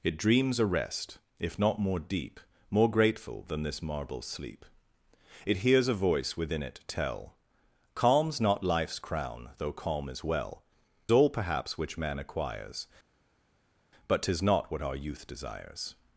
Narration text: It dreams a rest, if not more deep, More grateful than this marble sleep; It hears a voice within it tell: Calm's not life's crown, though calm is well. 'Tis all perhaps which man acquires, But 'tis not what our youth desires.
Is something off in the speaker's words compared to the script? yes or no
yes